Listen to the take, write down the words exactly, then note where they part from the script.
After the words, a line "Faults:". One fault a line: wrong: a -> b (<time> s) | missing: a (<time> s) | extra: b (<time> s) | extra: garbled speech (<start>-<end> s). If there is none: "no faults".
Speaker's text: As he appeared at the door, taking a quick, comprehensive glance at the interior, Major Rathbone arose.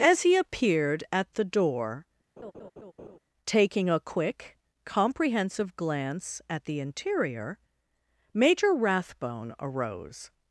As he appeared at the door, taking a quick, comprehensive glance at the interior, Major Rathbone arose.
Faults:
no faults